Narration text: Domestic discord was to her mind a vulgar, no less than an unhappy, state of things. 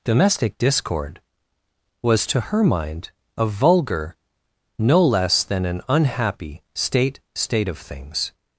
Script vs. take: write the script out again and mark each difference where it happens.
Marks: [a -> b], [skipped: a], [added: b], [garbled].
Domestic discord was to her mind a vulgar, no less than an unhappy, state [added: state] of things.